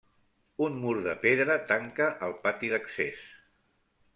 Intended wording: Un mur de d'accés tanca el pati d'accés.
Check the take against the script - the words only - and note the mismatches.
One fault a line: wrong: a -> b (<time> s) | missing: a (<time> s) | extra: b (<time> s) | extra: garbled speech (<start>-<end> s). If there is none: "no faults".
wrong: d'accés -> pedra (1.2 s)